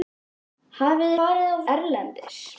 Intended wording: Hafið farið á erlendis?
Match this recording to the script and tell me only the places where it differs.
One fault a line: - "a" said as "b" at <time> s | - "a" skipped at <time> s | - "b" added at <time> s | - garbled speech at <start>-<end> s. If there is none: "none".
none